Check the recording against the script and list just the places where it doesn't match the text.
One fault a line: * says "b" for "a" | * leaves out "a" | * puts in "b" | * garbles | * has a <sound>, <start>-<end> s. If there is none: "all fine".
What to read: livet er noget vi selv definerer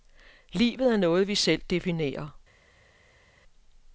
all fine